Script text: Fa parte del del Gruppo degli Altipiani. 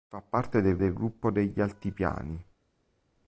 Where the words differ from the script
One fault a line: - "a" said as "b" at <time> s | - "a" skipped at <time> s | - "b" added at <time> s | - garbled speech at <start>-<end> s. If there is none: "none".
none